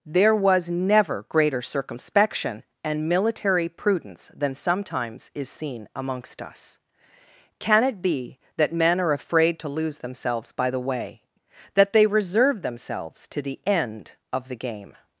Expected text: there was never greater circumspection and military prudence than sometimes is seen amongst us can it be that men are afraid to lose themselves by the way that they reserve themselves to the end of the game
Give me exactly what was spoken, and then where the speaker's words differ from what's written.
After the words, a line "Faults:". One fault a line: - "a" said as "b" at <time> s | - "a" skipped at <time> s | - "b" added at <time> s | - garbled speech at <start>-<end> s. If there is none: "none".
there was never greater circumspection and military prudence than sometimes is seen amongst us can it be that men are afraid to lose themselves by the way that they reserve themselves to the end of the game
Faults:
none